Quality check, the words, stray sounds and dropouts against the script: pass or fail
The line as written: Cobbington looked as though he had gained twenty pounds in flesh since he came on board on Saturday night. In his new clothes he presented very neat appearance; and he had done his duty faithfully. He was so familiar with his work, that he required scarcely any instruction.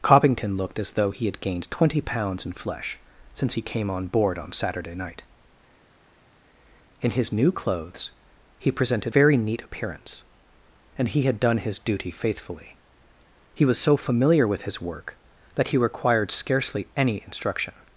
pass